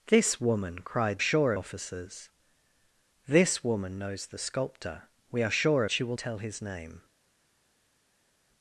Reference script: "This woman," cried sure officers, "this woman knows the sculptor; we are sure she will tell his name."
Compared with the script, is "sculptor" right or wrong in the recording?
right